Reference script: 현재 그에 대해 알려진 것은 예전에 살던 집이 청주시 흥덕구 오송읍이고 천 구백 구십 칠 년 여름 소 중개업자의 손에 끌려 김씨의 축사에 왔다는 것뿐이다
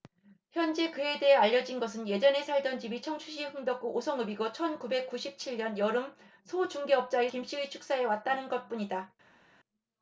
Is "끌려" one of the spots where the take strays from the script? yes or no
yes